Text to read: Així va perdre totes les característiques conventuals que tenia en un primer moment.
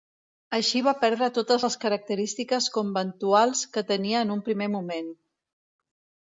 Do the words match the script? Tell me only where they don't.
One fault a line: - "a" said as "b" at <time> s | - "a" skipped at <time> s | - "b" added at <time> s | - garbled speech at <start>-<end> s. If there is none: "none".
none